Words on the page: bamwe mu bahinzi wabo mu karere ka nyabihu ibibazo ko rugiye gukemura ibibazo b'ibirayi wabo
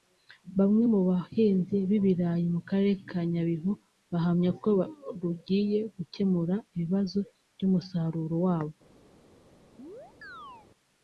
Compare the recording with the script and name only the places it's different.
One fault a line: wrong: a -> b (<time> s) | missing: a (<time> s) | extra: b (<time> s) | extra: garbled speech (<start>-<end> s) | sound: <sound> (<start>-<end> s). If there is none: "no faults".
wrong: wabo -> b'ibirayi (1.9 s)
wrong: ibibazo -> bahamya (4.1 s)
wrong: b'ibirayi -> by'umusaruro (7.5 s)
sound: chirp (9.8-10.7 s)